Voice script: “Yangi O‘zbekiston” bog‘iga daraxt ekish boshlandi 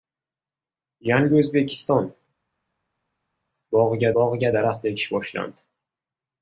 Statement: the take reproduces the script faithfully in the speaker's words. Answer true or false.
false